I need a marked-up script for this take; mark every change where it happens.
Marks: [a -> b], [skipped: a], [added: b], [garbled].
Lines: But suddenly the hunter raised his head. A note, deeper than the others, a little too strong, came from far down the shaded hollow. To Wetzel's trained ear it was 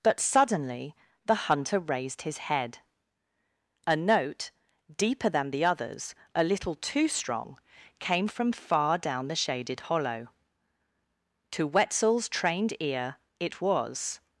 But suddenly the hunter raised his head. A note, deeper than the others, a little too strong, came from far down the shaded hollow. To Wetzel's trained ear it was